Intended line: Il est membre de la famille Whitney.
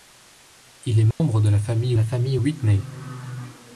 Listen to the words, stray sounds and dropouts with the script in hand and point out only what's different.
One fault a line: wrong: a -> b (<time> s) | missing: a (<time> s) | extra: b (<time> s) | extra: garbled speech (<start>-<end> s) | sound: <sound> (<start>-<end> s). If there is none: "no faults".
sound: dropout (1.1-1.2 s)
extra: la famille (1.9 s)